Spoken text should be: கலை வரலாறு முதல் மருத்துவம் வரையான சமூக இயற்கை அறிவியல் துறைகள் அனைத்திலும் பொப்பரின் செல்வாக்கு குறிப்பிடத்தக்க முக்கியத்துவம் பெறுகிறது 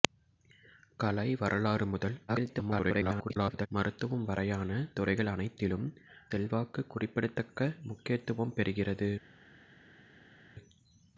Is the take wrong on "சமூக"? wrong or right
wrong